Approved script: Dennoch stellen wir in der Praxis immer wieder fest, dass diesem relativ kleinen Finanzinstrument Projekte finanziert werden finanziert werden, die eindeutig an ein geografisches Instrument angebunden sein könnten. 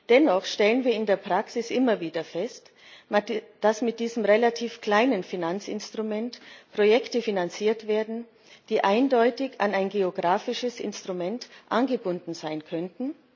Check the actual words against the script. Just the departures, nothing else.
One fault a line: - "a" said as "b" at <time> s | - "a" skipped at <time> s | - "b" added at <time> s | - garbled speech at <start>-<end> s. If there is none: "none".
- "mit" added at 3.8 s
- "finanziert werden" skipped at 8.2 s